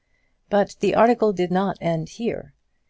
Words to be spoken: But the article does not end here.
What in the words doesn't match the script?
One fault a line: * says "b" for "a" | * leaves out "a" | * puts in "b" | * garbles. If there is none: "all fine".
* says "did" for "does"